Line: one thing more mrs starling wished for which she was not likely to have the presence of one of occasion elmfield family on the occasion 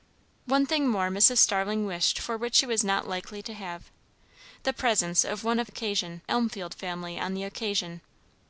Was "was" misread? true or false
false